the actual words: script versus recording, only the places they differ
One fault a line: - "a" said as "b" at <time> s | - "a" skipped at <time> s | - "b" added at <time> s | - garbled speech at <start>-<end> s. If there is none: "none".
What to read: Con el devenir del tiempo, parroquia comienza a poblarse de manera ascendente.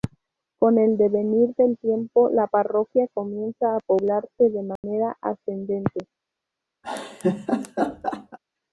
- "la" added at 2.3 s